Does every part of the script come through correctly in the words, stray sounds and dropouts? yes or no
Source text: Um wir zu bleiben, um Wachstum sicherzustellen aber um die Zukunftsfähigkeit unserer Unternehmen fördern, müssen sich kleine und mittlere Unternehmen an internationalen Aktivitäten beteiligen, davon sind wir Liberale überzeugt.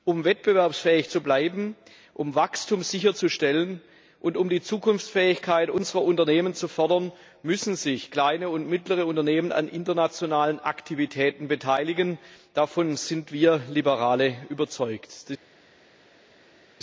no